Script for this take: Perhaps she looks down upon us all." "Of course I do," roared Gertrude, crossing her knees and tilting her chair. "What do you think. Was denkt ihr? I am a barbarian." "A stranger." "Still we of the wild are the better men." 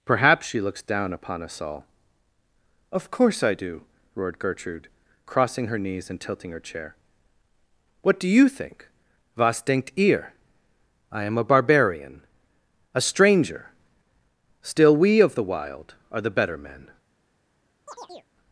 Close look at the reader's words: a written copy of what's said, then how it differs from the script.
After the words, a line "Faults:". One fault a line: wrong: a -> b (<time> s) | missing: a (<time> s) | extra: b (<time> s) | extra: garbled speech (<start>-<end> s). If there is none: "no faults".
Perhaps she looks down upon us all." "Of course I do," roared Gertrude, crossing her knees and tilting her chair. "What do you think. Was denkt ihr? I am a barbarian." "A stranger." "Still we of the wild are the better men."
Faults:
no faults